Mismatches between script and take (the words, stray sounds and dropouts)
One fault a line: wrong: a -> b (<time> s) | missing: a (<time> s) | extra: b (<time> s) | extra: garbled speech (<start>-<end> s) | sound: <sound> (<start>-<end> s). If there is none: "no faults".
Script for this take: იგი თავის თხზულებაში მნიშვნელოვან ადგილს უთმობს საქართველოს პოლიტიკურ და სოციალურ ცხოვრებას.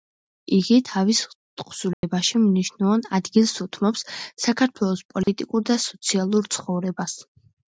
sound: dropout (1.9-2.0 s)
sound: dropout (5.2-5.3 s)